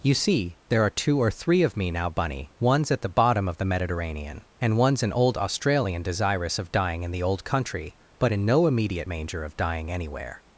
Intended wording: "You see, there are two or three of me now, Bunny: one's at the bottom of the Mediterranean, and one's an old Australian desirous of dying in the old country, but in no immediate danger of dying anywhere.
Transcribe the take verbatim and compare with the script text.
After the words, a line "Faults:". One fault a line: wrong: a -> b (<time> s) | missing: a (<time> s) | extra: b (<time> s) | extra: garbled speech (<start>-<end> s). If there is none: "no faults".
"You see, there are two or three of me now, Bunny: one's at the bottom of the Mediterranean, and one's an old Australian desirous of dying in the old country, but in no immediate manger of dying anywhere.
Faults:
wrong: danger -> manger (9.1 s)